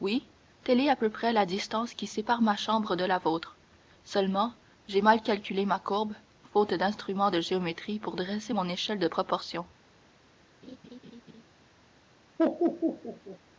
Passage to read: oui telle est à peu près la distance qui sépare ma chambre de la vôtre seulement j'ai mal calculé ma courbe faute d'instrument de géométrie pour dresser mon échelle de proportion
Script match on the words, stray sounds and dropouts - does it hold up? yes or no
no